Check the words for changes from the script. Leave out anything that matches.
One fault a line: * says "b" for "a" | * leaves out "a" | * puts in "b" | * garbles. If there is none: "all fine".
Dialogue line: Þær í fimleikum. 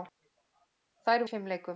all fine